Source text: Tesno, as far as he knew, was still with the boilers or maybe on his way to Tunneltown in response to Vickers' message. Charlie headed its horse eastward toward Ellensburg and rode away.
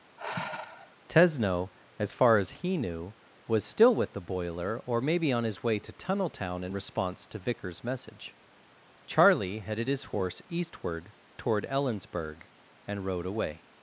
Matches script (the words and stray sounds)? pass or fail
fail